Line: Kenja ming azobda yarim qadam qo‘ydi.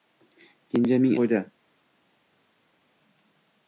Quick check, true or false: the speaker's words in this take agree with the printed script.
false